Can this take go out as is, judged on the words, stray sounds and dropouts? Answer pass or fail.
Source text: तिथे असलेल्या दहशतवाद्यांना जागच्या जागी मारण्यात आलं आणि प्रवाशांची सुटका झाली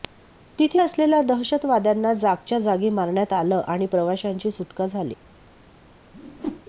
fail